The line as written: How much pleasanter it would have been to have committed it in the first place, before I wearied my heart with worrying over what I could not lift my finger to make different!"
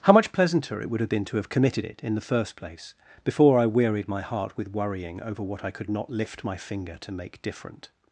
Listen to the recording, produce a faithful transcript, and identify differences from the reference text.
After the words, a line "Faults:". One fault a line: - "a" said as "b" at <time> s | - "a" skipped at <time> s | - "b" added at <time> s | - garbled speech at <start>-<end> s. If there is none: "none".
How much pleasanter it would have been to have committed it in the first place, before I wearied my heart with worrying over what I could not lift my finger to make different!"
Faults:
none